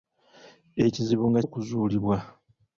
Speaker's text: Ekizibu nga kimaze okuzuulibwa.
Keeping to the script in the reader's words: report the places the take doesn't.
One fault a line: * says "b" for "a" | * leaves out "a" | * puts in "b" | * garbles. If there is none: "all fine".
* leaves out "kimaze"